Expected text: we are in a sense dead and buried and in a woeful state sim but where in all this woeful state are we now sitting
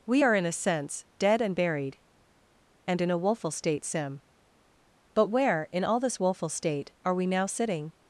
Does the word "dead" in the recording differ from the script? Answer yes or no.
no